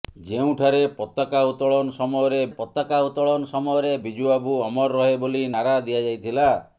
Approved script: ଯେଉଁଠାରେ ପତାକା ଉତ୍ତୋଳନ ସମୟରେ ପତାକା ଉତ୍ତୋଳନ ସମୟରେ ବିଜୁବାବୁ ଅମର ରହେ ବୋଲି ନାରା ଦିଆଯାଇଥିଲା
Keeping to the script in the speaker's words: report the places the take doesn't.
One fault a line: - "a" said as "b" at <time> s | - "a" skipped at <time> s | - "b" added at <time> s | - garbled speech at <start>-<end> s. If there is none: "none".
none